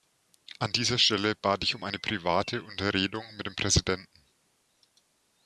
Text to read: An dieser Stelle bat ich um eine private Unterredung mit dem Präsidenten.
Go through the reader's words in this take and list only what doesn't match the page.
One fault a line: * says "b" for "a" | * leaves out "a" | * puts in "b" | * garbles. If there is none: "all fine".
all fine